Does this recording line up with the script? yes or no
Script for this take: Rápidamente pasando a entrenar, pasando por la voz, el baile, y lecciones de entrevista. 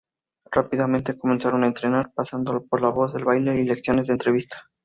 no